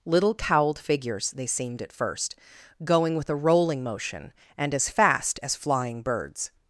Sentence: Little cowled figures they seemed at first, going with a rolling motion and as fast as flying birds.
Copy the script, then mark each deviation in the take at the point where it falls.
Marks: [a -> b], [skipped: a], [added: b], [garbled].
Little cowled figures they seemed at first, going with a rolling motion and as fast as flying birds.